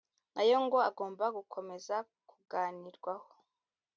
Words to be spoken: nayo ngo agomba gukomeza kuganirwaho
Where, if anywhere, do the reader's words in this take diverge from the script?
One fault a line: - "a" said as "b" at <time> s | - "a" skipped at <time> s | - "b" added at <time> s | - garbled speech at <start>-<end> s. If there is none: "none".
none